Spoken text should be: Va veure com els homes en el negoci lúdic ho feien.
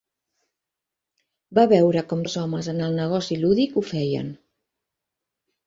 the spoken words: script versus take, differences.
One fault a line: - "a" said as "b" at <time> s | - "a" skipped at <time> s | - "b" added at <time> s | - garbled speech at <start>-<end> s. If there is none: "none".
none